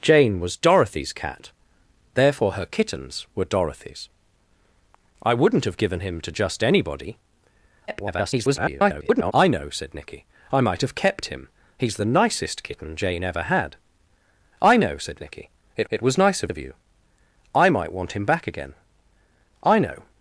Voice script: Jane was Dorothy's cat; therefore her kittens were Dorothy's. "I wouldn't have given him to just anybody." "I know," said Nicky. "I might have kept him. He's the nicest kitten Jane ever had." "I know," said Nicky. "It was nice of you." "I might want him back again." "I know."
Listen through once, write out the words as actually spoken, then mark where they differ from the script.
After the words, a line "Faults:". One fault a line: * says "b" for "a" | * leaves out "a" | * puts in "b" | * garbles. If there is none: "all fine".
Jane was Dorothy's cat; therefore her kittens were Dorothy's. "I wouldn't have given him to just anybody." [garbled] "I know," said Nicky. "I might have kept him. He's the nicest kitten Jane ever had." "I know," said Nicky. "It it was nice of of you." "I might want him back again." "I know."
Faults:
* garbles
* puts in "it"
* puts in "of"